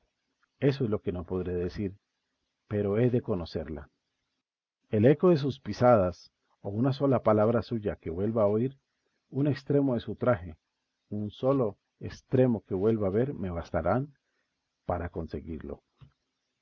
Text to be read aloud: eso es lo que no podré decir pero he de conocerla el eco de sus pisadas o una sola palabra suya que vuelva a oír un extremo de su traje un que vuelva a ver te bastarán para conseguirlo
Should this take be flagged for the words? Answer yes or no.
yes